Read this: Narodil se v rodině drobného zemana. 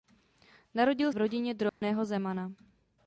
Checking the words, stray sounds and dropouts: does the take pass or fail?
fail